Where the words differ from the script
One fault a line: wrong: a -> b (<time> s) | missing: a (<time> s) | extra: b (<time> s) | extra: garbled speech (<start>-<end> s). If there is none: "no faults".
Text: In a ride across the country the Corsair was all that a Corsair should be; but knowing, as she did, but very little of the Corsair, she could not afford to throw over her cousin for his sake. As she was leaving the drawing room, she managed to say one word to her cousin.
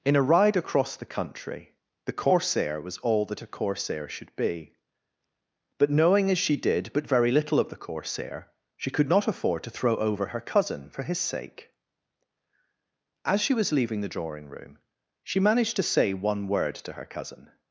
no faults